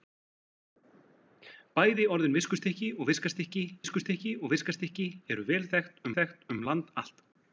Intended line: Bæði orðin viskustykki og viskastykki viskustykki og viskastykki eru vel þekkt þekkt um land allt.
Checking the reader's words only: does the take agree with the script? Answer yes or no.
yes